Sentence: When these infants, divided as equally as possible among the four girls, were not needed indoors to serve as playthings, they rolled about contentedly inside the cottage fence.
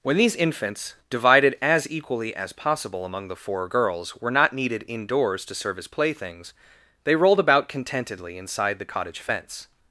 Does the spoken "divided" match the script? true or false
true